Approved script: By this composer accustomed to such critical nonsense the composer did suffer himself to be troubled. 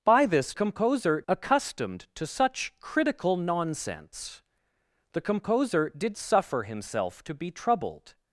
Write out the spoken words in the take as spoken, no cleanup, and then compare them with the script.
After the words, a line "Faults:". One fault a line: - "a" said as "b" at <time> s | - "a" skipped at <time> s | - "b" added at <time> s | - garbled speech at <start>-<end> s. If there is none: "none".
By this composer accustomed to such critical nonsense the composer did suffer himself to be troubled.
Faults:
none